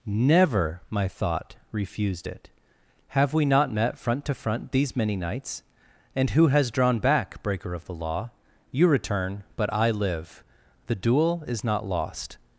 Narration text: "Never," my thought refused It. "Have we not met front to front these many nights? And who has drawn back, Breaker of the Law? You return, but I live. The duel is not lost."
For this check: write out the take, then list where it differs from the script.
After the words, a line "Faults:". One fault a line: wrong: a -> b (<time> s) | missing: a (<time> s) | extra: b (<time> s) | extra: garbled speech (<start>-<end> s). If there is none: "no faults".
"Never," my thought refused It. "Have we not met front to front these many nights? And who has drawn back, Breaker of the Law? You return, but I live. The duel is not lost."
Faults:
no faults